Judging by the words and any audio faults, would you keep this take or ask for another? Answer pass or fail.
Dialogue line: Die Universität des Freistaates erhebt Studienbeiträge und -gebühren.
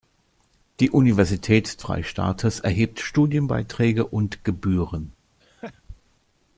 fail